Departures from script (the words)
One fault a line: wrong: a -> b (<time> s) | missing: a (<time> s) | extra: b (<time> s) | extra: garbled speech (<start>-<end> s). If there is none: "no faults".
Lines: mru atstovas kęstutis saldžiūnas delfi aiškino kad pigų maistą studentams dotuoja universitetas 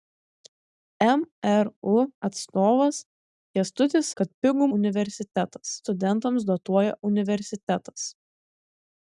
missing: saldžiūnas delfi aiškino (4.1 s)
wrong: maistą -> universitetas (4.8 s)